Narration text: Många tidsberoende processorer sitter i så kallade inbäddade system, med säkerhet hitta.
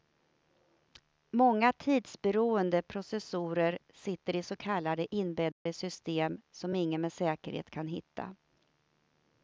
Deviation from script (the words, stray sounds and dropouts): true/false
true